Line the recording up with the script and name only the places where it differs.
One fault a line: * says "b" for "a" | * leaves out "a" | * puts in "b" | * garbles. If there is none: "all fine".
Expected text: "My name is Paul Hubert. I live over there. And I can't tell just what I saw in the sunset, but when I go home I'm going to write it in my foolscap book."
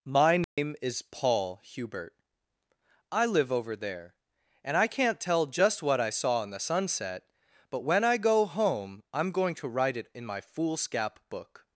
all fine